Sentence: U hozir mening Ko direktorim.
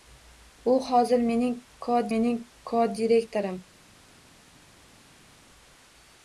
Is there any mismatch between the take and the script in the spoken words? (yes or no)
yes